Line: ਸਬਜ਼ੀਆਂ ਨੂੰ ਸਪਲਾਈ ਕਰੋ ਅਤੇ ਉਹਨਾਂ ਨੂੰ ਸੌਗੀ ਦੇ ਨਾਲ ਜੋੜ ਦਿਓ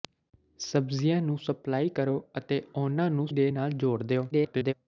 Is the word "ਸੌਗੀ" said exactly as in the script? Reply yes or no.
no